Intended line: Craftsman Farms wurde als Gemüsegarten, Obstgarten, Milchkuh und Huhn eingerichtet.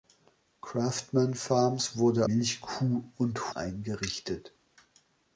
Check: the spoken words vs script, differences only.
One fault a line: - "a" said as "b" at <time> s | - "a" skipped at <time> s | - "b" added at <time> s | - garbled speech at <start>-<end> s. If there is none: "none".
- "als Gemüsegarten Obstgarten" skipped at 2.3 s
- "Huhn" skipped at 3.5 s